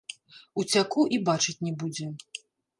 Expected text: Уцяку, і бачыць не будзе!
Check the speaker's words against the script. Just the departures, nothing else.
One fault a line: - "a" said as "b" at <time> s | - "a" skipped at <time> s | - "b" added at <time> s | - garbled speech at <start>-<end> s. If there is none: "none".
none